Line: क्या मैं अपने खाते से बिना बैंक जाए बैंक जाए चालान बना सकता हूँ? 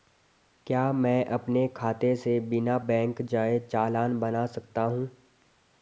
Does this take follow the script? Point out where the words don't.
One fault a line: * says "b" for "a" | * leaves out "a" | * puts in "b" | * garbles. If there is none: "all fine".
* leaves out "बैंक जाए"